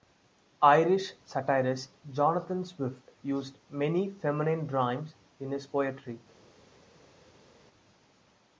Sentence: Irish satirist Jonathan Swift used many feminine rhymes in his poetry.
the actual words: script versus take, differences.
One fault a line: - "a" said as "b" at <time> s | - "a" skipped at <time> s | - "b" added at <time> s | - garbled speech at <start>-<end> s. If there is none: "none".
none